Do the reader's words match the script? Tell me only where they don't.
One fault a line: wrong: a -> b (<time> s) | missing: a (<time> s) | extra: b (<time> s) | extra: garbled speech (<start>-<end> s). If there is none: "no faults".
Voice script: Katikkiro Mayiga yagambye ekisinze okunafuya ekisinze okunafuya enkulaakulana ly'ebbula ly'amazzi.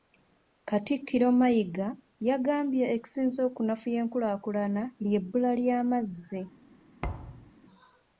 missing: ekisinze okunafuya (4.0 s)